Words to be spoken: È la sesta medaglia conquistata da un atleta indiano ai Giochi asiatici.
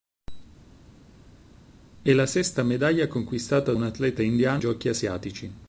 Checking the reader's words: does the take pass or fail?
fail